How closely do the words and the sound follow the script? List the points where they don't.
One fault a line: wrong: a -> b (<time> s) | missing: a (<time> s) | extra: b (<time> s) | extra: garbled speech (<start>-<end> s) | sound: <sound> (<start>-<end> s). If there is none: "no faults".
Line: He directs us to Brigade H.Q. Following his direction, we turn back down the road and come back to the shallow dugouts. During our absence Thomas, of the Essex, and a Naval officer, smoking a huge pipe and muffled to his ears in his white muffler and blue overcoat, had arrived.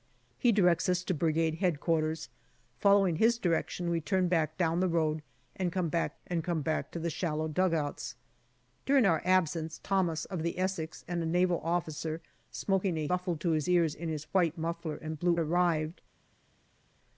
extra: and come back (6.3 s)
missing: huge pipe and (13.1 s)
missing: overcoat had (15.4 s)